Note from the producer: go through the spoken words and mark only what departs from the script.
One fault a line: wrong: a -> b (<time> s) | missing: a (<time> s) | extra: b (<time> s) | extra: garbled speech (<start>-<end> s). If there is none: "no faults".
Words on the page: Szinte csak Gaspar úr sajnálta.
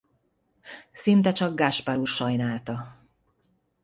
no faults